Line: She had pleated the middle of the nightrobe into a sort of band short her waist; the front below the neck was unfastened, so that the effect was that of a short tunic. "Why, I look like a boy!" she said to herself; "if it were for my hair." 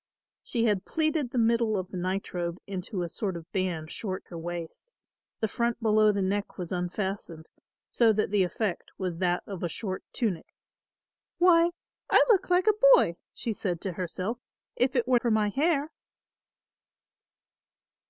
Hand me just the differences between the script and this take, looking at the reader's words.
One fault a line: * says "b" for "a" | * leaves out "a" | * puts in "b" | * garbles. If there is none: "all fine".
all fine